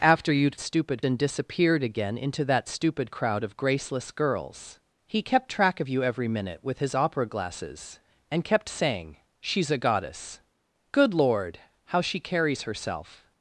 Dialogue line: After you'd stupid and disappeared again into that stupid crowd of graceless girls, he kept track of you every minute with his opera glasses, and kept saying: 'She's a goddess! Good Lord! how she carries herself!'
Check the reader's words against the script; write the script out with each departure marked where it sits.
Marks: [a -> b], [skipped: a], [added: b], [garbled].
After you'd stupid and disappeared again into that stupid crowd of graceless girls, he kept track of you every minute with his opera glasses, and kept saying: 'She's a goddess! Good Lord! how she carries herself!'